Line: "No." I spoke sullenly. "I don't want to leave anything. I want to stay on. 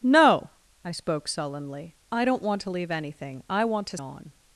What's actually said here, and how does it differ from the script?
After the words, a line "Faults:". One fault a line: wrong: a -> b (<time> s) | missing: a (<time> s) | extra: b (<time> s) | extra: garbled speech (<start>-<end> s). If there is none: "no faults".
"No." I spoke sullenly. "I don't want to leave anything. I want to on.
Faults:
missing: stay (4.0 s)